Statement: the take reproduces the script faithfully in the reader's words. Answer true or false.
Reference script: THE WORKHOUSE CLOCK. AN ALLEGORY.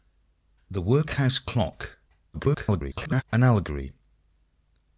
false